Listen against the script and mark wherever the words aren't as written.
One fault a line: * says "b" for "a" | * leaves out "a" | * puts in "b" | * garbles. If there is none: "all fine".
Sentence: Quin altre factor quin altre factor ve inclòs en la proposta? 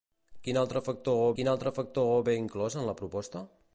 all fine